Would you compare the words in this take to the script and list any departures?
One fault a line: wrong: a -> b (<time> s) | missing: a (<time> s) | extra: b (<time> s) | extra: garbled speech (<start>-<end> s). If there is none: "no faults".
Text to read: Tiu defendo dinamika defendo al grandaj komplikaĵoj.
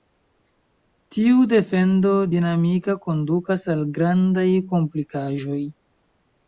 wrong: defendo -> kondukas (3.1 s)